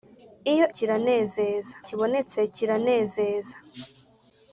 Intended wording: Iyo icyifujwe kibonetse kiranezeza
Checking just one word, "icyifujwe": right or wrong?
wrong